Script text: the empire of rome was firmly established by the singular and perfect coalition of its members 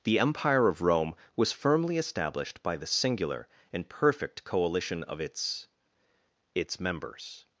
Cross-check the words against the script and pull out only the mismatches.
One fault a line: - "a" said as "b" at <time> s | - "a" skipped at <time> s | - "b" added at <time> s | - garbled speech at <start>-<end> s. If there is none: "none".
- "its" added at 6.5 s